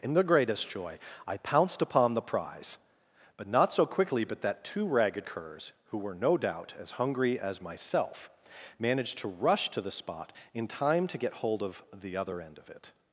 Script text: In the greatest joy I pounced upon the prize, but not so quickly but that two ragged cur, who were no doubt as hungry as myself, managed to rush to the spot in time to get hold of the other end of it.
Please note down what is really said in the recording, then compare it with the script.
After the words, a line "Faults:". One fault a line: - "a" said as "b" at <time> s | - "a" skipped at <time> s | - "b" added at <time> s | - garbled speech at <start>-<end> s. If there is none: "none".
In the greatest joy I pounced upon the prize, but not so quickly but that two ragged curs, who were no doubt as hungry as myself, managed to rush to the spot in time to get hold of the other end of it.
Faults:
- "cur" said as "curs" at 5.2 s